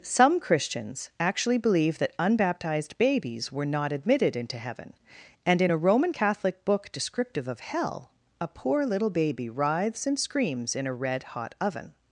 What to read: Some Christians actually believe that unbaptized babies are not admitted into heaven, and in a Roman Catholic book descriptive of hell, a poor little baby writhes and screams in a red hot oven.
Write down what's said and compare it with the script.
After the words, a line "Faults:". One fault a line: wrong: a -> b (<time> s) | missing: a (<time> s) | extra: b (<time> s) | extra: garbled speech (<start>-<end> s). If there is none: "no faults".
Some Christians actually believe that unbaptized babies were not admitted into heaven, and in a Roman Catholic book descriptive of hell, a poor little baby writhes and screams in a red hot oven.
Faults:
wrong: are -> were (3.5 s)